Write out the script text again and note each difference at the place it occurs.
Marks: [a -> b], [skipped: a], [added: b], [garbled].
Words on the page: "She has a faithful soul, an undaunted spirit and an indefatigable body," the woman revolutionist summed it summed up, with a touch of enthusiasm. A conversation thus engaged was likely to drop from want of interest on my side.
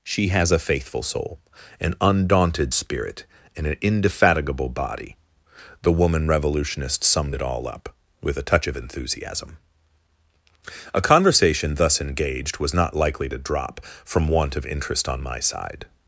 "She has a faithful soul, an undaunted spirit and an indefatigable body," the woman revolutionist summed it [summed -> all] up, with a touch of enthusiasm. A conversation thus engaged was [added: not] likely to drop from want of interest on my side.